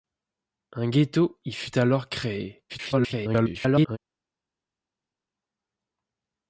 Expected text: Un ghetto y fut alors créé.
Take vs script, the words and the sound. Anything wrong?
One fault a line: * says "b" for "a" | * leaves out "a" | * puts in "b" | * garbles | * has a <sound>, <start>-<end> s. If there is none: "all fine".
* garbles